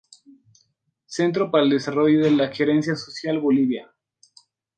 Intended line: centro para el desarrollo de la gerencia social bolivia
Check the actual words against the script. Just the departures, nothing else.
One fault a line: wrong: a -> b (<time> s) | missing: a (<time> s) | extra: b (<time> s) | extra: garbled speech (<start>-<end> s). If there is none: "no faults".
no faults